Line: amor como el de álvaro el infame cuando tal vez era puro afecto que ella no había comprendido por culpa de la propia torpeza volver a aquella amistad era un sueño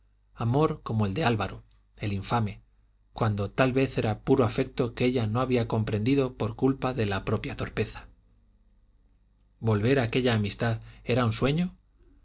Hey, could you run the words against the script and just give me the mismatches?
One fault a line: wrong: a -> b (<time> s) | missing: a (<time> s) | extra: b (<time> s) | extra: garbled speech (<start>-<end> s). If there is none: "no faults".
no faults